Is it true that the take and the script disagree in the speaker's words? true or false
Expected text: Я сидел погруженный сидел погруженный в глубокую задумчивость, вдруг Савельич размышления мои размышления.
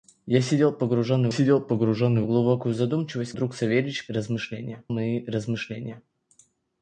false